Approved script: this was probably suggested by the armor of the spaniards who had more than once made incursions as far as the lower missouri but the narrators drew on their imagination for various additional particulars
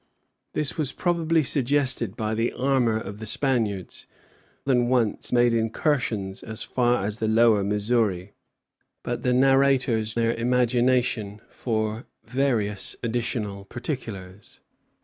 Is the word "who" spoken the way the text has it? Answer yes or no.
no